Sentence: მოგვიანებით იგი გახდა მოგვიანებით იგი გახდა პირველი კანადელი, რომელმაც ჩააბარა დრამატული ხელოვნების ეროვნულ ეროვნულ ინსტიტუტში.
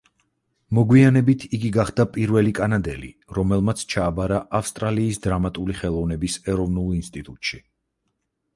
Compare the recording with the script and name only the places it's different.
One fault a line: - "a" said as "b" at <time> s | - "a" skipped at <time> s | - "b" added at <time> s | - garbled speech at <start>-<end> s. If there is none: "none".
- "მოგვიანებით იგი გახდა" skipped at 2.0 s
- "ავსტრალიის" added at 4.6 s
- "ეროვნულ" skipped at 6.9 s